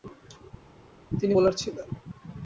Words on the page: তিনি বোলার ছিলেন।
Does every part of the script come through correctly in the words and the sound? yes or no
yes